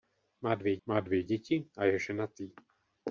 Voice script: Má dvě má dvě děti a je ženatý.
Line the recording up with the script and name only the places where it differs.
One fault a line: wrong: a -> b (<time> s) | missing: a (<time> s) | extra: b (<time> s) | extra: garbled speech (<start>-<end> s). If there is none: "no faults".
no faults